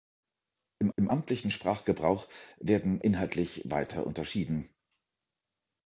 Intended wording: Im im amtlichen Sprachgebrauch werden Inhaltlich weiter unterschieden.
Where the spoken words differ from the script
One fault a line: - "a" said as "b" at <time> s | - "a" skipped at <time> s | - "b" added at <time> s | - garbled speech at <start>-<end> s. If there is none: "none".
none